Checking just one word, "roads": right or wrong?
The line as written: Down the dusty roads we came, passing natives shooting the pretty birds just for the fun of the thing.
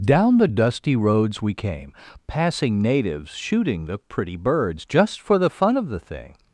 right